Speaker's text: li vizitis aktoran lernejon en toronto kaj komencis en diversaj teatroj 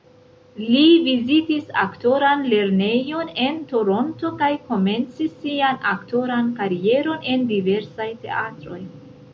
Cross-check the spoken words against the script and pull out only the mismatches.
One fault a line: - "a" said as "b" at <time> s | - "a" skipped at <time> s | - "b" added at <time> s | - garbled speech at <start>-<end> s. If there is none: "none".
- "sian aktoran karieron" added at 5.4 s